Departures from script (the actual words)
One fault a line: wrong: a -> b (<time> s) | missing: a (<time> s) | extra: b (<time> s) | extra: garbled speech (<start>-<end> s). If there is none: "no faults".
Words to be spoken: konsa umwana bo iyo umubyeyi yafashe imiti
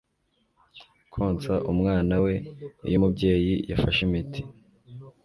wrong: bo -> we (2.2 s)